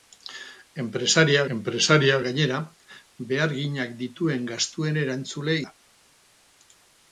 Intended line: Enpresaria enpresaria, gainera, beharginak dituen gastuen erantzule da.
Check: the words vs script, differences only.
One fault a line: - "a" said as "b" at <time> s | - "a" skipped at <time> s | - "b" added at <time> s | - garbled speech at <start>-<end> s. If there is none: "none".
none